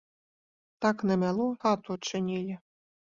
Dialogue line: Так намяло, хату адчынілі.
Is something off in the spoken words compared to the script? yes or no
no